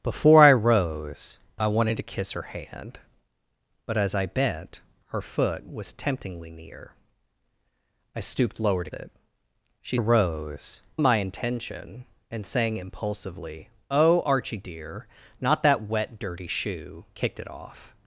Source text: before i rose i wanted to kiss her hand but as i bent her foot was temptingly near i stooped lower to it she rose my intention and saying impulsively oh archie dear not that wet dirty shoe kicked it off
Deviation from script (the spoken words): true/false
false